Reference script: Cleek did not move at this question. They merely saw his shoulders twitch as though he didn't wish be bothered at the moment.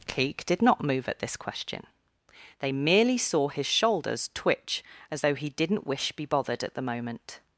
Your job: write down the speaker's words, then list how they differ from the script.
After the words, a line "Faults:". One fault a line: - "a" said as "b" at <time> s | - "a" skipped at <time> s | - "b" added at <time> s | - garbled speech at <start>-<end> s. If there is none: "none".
Cleek did not move at this question. They merely saw his shoulders twitch as though he didn't wish be bothered at the moment.
Faults:
none